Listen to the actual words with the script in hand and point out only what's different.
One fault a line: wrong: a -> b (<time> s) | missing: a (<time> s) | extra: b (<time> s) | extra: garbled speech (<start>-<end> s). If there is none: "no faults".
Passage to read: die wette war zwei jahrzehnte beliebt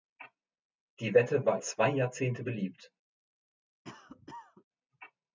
no faults